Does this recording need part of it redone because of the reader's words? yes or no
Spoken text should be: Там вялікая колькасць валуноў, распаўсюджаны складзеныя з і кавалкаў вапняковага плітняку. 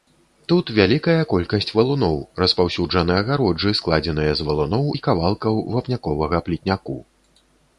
yes